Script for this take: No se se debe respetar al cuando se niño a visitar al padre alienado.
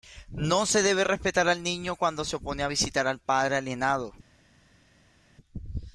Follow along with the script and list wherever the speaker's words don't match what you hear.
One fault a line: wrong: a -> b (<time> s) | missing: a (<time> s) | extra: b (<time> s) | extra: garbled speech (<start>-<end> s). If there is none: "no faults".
missing: se (0.8 s)
extra: niño (1.6 s)
wrong: niño -> opone (2.4 s)